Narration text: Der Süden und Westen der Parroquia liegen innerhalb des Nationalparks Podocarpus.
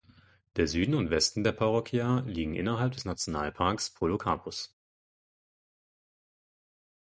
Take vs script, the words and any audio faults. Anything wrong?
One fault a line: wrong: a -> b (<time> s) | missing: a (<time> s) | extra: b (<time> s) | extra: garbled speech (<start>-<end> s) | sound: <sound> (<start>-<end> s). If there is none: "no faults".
no faults